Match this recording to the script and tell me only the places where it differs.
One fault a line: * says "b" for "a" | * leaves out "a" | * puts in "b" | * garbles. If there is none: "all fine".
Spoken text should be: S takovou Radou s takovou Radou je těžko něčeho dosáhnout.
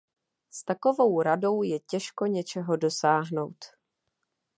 * leaves out "s takovou Radou"